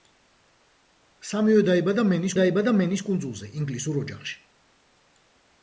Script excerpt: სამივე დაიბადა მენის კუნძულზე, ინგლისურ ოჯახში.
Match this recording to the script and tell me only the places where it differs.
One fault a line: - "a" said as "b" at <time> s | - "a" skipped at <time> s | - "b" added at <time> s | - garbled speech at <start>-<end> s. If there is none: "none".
- "დაიბადა მენის" added at 2.4 s